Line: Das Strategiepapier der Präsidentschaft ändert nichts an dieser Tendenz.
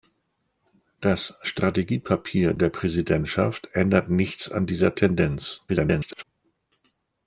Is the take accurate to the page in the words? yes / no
no